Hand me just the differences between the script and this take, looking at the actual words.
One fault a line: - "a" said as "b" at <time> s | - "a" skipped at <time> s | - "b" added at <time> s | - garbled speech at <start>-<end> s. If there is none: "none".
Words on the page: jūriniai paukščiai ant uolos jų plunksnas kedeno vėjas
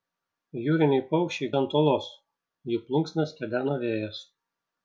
none